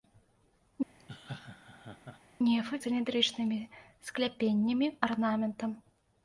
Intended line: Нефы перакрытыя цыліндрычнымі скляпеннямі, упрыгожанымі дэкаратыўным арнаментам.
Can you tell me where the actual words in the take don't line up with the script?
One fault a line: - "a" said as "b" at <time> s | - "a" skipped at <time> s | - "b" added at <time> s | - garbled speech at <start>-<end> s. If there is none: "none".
- "перакрытыя" skipped at 2.8 s
- "упрыгожанымі дэкаратыўным" skipped at 4.9 s